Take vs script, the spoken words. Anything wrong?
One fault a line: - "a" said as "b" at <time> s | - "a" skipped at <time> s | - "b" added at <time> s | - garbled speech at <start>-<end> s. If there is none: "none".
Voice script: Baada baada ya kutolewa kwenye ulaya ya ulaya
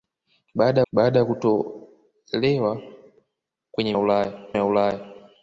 none